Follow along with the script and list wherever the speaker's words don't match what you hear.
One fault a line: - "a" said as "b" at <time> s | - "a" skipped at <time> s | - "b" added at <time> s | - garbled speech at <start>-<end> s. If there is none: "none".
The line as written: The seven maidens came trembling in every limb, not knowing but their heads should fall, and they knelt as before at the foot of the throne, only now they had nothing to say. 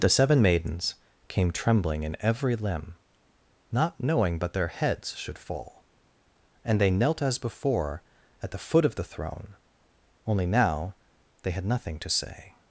none